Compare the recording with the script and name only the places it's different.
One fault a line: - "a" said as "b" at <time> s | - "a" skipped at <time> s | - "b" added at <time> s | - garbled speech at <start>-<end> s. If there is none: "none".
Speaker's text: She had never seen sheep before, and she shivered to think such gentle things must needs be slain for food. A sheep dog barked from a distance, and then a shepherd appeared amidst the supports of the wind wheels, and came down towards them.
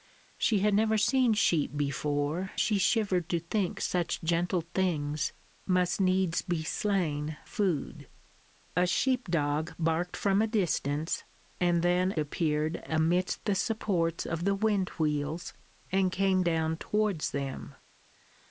- "and" skipped at 2.5 s
- "for" skipped at 7.4 s
- "a shepherd" skipped at 12.1 s